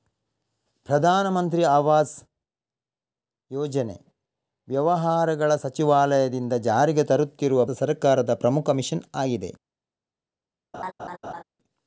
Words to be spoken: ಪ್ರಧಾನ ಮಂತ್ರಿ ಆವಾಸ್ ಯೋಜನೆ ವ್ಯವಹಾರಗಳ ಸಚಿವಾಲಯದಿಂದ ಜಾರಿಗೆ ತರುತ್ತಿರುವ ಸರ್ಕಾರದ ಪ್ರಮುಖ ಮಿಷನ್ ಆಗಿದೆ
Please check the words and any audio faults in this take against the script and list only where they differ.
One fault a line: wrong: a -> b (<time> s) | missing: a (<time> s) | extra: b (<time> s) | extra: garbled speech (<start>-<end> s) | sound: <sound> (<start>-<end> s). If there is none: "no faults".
sound: laugh (10.7-11.4 s)